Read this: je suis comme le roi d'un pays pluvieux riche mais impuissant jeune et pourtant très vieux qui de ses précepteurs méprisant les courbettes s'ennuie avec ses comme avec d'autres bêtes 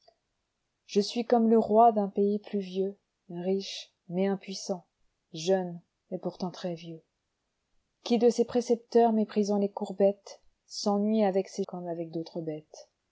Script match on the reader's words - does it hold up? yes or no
yes